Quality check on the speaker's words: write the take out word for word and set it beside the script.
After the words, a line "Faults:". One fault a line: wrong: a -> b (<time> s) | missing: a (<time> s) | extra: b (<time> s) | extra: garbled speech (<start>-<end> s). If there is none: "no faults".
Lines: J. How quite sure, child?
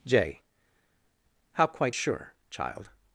J. How quite sure, child?
Faults:
no faults